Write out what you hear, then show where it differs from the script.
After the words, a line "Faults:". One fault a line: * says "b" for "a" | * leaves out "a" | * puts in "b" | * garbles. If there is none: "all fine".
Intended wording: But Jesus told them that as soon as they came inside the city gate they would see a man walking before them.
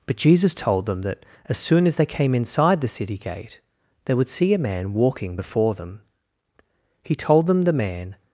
But Jesus told them that as soon as they came inside the city gate they would see a man walking before them. He told them the man
Faults:
* puts in "He told them the man"